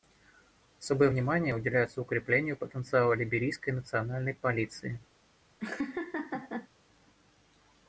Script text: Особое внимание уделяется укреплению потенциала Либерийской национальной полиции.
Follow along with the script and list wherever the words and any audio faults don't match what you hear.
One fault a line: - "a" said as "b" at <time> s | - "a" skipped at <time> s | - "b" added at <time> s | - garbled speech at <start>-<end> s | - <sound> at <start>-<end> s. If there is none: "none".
- laugh at 5.6-6.7 s